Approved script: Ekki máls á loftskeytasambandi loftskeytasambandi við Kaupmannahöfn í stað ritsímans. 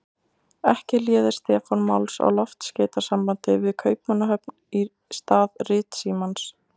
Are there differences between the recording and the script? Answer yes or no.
yes